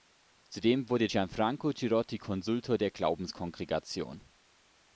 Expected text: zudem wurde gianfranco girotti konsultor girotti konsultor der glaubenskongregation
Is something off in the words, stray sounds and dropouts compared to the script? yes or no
yes